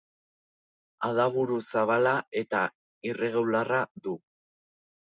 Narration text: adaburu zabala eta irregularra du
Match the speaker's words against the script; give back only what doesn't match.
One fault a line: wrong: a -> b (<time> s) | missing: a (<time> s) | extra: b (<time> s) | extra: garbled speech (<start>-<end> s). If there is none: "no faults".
no faults